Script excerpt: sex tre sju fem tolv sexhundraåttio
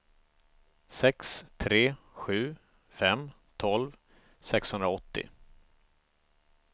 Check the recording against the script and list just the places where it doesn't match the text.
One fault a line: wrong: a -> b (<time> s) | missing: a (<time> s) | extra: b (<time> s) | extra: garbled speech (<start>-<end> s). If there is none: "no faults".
no faults